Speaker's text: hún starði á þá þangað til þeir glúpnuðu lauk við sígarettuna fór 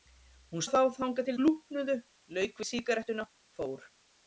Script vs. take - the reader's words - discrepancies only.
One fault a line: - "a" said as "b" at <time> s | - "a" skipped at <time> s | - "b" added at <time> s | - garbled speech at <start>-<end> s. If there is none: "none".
- "starði" skipped at 0.6 s
- "þeir" skipped at 1.4 s